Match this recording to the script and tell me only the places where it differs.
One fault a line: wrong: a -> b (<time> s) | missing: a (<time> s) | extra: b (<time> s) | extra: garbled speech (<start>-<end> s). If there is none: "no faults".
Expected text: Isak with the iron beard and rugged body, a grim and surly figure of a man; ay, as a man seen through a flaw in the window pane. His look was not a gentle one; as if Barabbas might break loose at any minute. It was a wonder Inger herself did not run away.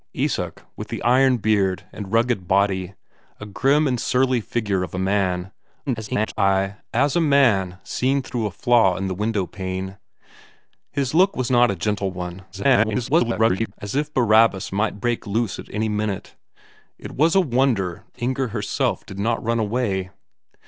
extra: garbled speech (5.9-6.3 s)
extra: garbled speech (12.5-13.7 s)